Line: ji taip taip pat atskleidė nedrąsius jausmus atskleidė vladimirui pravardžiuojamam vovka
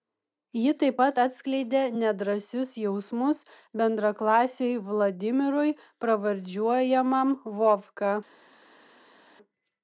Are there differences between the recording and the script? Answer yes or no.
yes